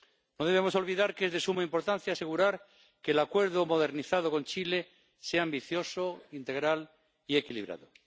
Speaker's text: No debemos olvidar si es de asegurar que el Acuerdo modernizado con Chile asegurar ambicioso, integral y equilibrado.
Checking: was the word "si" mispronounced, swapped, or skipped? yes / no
yes